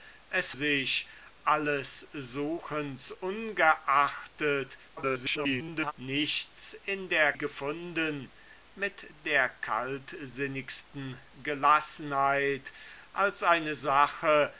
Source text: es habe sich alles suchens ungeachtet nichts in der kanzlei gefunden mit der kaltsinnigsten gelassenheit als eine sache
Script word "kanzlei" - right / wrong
wrong